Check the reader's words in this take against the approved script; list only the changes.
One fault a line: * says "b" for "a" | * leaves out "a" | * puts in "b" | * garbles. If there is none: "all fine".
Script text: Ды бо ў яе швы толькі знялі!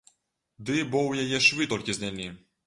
all fine